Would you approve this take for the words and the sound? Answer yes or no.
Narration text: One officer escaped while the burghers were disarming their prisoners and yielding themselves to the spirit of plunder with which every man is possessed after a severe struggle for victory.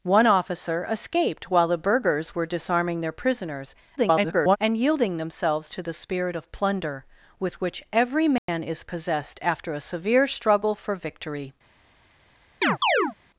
no